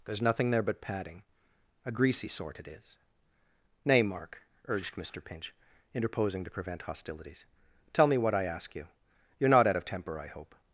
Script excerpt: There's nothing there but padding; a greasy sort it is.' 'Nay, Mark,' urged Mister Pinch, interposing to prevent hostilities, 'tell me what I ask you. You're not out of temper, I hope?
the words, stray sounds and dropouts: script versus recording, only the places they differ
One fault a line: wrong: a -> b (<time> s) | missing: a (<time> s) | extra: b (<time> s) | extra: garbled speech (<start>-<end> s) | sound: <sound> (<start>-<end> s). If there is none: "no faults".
no faults